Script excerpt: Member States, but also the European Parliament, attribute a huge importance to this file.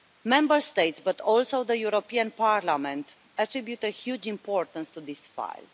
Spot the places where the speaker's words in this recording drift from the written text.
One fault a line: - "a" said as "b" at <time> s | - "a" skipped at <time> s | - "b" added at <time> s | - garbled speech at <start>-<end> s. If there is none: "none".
none